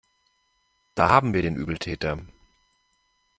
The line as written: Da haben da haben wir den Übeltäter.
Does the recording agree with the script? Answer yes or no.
no